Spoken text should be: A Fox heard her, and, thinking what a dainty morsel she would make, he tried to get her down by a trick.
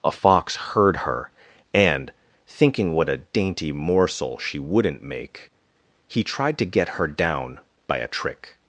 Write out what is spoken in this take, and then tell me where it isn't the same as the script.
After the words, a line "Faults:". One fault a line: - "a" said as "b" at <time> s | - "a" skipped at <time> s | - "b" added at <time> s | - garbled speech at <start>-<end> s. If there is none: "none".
A Fox heard her, and, thinking what a dainty morsel she wouldn't make, he tried to get her down by a trick.
Faults:
- "would" said as "wouldn't" at 4.6 s